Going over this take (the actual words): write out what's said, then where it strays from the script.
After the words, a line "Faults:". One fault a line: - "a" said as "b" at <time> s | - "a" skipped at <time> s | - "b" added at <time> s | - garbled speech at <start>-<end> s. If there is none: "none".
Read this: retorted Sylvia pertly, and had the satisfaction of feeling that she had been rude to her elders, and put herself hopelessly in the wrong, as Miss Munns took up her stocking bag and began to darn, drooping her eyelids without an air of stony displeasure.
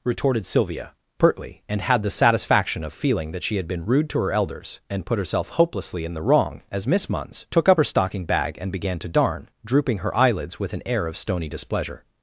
retorted Sylvia pertly, and had the satisfaction of feeling that she had been rude to her elders, and put herself hopelessly in the wrong, as Miss Munns took up her stocking bag and began to darn, drooping her eyelids with an air of stony displeasure.
Faults:
- "without" said as "with" at 10.6 s